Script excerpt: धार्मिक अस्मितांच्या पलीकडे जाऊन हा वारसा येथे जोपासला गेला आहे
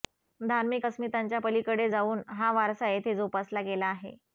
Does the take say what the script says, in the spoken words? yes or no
yes